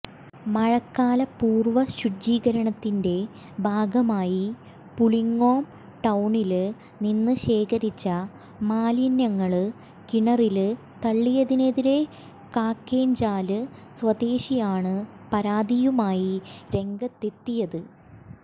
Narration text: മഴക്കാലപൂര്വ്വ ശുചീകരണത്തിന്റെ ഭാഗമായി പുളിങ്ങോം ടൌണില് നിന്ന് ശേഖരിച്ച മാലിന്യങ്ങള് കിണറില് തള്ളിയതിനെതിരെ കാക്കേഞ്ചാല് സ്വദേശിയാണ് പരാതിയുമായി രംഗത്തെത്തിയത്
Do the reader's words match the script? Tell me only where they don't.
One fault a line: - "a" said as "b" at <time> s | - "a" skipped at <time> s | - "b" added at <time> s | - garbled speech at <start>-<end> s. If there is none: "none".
none